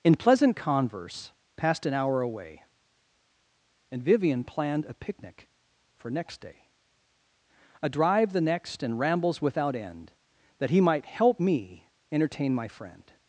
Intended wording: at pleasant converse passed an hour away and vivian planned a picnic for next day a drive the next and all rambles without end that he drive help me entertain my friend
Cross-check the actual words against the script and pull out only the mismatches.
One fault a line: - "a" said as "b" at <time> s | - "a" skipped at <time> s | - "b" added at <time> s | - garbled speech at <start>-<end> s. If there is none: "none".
- "at" said as "in" at 0.0 s
- "all" skipped at 9.0 s
- "drive" said as "might" at 10.8 s